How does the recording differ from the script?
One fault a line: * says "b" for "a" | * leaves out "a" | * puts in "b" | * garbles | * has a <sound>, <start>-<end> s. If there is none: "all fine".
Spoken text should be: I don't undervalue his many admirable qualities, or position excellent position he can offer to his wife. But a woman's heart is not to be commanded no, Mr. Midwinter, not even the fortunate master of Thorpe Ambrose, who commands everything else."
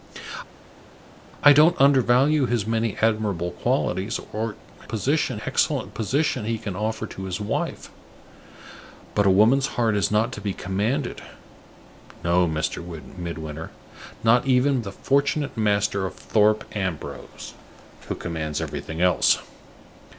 all fine